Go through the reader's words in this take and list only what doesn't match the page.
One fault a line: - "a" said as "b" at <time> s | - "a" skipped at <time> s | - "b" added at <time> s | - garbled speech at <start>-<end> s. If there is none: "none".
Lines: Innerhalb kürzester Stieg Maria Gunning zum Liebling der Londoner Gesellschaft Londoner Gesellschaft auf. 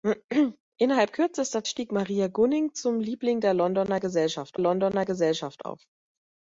none